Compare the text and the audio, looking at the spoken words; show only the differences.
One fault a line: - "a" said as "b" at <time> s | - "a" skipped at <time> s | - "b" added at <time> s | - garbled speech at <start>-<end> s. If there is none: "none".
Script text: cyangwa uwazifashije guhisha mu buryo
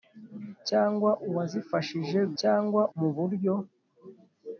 - "guhisha" said as "cyangwa" at 2.4 s